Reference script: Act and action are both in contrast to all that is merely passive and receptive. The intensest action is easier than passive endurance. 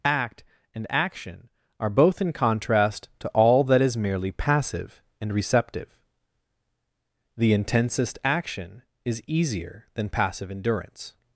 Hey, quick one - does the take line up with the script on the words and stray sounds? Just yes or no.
yes